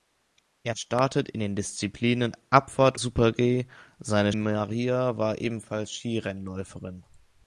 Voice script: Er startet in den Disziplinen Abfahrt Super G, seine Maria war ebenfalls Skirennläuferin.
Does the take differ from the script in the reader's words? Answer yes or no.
no